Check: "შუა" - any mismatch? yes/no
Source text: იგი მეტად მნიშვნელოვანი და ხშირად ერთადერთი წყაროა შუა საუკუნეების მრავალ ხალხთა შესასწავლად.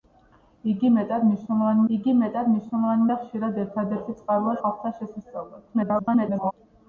yes